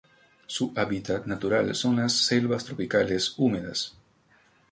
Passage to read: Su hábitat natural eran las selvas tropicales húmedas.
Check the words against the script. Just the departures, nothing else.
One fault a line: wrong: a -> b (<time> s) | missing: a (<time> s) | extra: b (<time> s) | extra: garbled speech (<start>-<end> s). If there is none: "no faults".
wrong: eran -> son (1.8 s)